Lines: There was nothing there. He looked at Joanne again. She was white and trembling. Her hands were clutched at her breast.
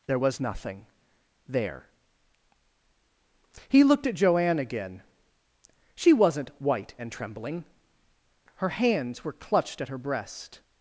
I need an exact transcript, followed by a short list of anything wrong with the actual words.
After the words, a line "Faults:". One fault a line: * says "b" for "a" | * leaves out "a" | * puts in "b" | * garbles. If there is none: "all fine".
There was nothing there. He looked at Joanne again. She wasn't white and trembling. Her hands were clutched at her breast.
Faults:
* says "wasn't" for "was"